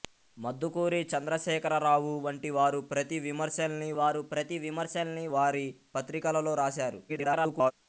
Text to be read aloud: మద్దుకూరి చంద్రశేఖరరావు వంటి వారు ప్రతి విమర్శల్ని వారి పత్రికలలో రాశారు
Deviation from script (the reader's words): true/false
true